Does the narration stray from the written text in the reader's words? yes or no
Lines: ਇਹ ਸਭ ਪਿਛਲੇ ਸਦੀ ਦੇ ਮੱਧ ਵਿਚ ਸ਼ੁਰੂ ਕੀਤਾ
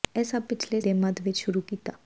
yes